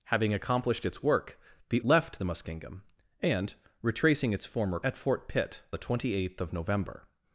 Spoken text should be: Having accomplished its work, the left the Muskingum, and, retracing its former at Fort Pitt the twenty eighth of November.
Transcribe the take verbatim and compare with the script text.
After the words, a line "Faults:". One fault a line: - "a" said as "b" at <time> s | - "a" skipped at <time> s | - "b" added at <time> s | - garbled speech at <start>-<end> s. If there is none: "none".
Having accomplished its work, the left the Muskingum, and, retracing its former at Fort Pitt the twenty eighth of November.
Faults:
none